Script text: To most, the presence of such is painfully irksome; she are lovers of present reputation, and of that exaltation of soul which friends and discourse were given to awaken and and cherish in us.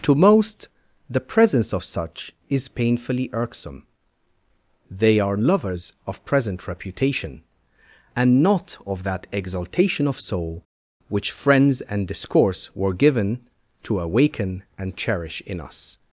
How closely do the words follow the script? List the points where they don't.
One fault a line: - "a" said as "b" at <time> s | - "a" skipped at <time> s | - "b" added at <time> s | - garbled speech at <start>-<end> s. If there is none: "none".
- "she" said as "they" at 4.9 s
- "not" added at 8.4 s
- "and" skipped at 15.0 s